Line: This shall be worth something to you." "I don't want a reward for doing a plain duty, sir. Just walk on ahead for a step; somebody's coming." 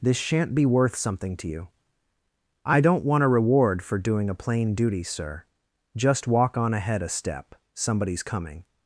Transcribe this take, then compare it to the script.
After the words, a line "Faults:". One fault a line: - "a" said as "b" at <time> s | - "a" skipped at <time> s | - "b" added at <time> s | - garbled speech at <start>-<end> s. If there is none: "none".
This shan't be worth something to you." "I don't want a reward for doing a plain duty, sir. Just walk on ahead a step; somebody's coming."
Faults:
- "shall" said as "shan't" at 0.2 s
- "for" skipped at 7.0 s